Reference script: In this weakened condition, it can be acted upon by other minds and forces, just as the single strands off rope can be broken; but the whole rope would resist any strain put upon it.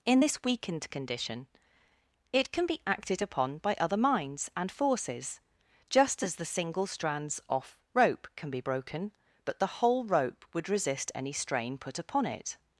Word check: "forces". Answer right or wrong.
right